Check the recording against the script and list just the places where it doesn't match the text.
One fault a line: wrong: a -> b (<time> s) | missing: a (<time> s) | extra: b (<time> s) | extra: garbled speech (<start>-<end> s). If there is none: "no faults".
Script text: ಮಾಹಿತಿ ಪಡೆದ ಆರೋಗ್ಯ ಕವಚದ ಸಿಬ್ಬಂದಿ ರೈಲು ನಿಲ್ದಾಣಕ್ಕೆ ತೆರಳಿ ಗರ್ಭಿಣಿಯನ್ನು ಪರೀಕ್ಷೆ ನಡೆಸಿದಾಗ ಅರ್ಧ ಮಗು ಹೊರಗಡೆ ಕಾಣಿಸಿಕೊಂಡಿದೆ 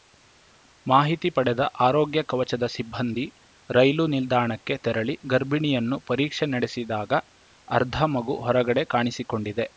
no faults